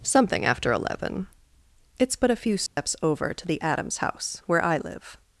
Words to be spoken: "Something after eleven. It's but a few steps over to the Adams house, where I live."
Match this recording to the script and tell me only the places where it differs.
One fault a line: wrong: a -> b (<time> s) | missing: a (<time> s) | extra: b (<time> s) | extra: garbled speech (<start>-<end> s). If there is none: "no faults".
no faults